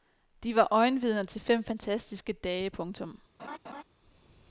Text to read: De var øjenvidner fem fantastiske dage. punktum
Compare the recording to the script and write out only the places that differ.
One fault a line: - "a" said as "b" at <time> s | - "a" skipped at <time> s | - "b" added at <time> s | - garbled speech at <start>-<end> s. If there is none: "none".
- "til" added at 1.2 s